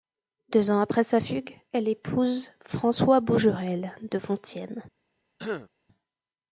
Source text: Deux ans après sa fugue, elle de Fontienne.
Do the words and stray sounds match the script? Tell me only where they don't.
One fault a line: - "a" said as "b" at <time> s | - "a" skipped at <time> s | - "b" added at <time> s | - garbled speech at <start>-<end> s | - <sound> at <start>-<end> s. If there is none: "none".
- "épouse François Bougerel" added at 1.9 s
- throat clearing at 5.4-5.7 s